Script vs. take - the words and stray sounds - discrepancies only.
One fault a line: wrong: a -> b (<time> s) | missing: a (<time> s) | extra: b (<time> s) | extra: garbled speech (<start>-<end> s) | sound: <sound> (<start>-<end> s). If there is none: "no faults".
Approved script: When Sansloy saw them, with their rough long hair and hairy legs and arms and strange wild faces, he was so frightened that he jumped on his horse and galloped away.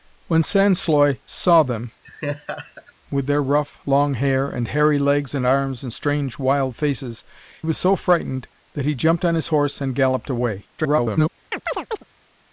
sound: laugh (2.0-2.9 s)
missing: he (7.2 s)
extra: garbled speech (10.8-11.3 s)
sound: chirp (11.5-12.0 s)